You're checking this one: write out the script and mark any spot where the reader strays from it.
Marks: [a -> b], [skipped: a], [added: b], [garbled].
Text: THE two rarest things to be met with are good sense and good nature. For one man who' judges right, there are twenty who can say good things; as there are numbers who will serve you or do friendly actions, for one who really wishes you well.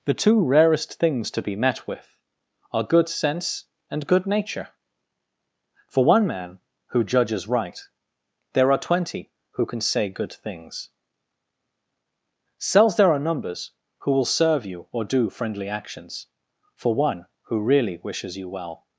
THE two rarest things to be met with are good sense and good nature. For one man who' judges right, there are twenty who can say good things; [as -> cells] there are numbers who will serve you or do friendly actions, for one who really wishes you well.